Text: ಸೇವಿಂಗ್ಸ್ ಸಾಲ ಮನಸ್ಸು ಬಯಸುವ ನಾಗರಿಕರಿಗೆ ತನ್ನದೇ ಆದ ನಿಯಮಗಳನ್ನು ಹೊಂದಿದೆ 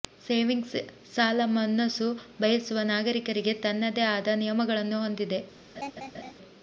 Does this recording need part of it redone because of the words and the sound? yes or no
yes